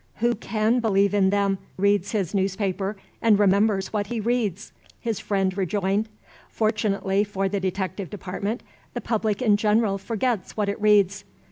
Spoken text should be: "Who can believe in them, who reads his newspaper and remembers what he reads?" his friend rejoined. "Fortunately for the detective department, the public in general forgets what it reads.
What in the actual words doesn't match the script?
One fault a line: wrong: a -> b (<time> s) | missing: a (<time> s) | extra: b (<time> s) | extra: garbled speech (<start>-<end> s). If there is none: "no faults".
missing: who (1.6 s)